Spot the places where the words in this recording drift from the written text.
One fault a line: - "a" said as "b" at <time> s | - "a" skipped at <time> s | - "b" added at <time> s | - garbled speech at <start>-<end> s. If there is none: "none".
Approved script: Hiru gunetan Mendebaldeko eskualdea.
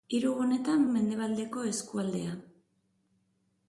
none